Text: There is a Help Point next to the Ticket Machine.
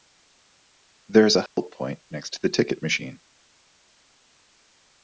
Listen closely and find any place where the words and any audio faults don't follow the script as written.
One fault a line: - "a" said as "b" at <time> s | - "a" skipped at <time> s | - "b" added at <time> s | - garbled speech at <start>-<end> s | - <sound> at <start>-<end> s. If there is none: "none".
- dropout at 1.5-1.6 s